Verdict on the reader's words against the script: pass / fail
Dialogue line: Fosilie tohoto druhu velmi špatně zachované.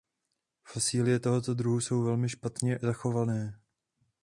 fail